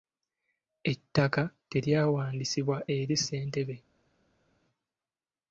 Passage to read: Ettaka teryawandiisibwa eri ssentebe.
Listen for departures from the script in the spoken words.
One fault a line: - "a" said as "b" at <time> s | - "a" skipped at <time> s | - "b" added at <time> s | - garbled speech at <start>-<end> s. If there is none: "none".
none